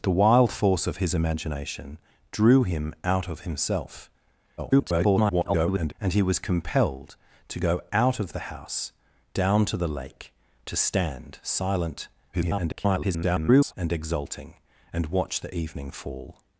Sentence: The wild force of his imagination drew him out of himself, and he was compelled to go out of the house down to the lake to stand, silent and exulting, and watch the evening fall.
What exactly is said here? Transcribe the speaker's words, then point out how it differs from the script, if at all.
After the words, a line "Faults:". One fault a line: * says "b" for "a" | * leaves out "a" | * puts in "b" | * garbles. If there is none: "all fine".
The wild force of his imagination drew him out of himself, [garbled] and he was compelled to go out of the house down to the lake to stand, silent [garbled] and exulting, and watch the evening fall.
Faults:
* garbles
* garbles